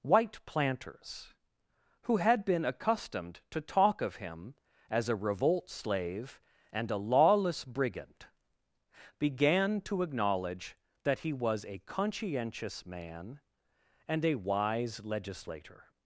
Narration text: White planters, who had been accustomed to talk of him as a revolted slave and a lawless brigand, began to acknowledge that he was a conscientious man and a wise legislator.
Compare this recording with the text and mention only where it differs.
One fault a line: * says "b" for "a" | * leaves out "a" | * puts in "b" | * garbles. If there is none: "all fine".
* says "revolt" for "revolted"